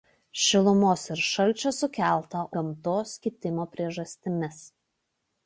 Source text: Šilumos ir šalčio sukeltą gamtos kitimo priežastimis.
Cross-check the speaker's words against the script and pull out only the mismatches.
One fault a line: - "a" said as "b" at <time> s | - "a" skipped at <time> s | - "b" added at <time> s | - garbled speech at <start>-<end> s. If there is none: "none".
none